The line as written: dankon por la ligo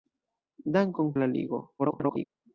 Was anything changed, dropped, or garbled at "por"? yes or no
yes